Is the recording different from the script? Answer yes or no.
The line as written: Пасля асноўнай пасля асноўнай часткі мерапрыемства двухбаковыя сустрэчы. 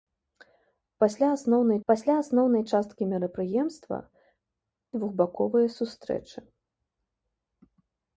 no